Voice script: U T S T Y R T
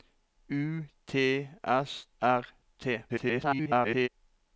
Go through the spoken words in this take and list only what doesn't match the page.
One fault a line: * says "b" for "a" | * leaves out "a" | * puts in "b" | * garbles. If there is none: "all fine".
* leaves out "T Y"
* garbles